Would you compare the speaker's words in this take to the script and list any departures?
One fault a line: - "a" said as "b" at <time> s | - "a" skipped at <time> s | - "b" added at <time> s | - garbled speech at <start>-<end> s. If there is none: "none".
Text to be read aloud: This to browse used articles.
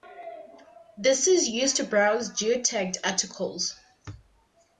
- "is used" added at 1.3 s
- "used" said as "geotagged" at 2.3 s